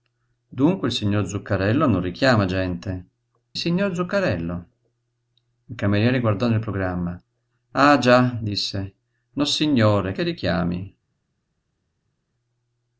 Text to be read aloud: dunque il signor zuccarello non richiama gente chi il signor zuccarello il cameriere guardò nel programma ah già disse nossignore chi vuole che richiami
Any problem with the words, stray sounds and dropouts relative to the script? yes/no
yes